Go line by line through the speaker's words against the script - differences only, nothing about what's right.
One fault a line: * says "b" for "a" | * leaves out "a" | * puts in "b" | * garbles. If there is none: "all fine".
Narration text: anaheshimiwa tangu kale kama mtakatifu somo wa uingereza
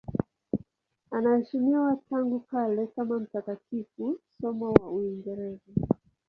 all fine